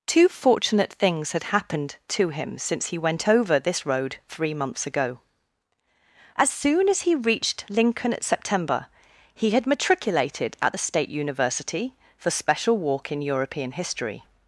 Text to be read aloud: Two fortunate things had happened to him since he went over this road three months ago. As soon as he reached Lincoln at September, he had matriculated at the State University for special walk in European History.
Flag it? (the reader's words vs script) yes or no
no